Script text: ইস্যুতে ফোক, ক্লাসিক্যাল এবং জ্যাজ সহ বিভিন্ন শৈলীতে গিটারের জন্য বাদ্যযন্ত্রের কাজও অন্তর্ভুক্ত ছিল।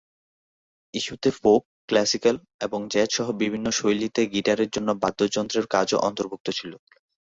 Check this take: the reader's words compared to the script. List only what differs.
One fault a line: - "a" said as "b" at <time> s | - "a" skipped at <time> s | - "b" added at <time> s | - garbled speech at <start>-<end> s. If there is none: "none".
none